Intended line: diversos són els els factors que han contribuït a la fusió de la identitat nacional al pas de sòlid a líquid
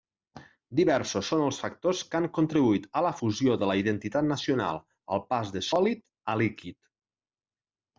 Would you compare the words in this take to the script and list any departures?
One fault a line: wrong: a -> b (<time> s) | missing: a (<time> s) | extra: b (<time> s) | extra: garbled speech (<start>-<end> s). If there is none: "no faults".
missing: els (1.6 s)